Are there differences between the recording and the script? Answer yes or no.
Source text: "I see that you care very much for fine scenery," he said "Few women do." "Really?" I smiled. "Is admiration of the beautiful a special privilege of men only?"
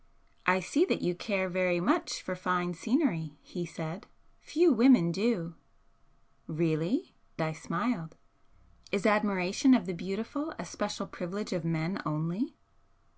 no